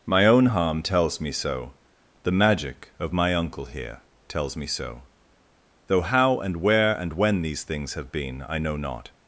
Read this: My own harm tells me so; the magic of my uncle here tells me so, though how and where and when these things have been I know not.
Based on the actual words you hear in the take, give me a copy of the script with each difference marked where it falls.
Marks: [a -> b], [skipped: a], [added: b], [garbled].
My own harm tells me so; the magic of my uncle here tells me so, though how and where and when these things have been I know not.